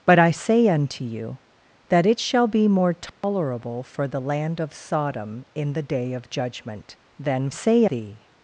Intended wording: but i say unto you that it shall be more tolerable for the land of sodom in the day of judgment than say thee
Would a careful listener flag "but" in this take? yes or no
no